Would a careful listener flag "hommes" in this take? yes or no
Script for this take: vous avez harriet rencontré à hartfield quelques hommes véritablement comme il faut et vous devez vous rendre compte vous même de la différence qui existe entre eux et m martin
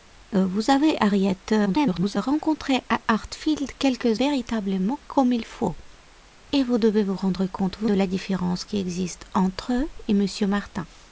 yes